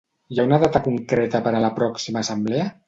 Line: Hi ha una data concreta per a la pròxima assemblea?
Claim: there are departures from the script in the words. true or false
false